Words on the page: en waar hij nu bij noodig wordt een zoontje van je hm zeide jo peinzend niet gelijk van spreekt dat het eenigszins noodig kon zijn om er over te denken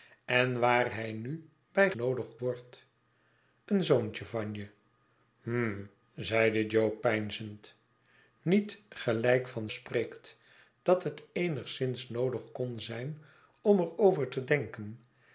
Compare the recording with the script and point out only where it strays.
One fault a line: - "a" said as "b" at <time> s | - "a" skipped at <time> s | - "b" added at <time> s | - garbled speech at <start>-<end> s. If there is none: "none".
none